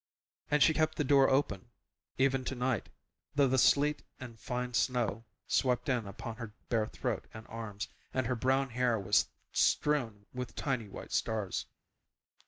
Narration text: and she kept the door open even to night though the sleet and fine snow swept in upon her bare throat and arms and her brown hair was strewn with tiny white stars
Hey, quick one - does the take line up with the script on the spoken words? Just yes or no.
yes